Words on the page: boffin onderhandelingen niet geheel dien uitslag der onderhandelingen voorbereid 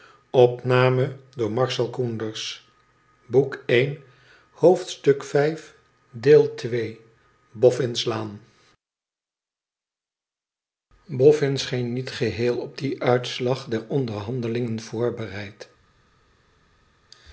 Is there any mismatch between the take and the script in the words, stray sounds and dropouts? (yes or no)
yes